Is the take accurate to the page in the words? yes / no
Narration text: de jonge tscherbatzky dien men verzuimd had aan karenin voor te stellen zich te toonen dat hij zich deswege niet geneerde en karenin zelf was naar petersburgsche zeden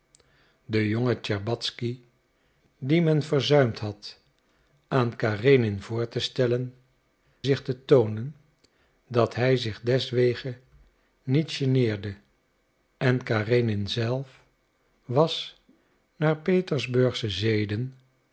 yes